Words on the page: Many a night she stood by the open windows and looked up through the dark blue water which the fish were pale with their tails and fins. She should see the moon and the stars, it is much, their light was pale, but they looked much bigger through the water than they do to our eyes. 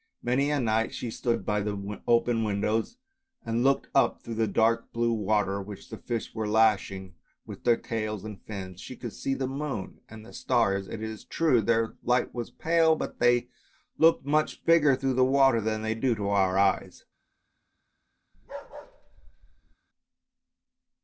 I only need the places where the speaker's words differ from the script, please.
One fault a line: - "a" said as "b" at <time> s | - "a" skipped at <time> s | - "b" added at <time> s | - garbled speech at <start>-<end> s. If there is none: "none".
- "pale" said as "lashing" at 6.5 s
- "should" said as "could" at 8.9 s
- "much" said as "true" at 11.2 s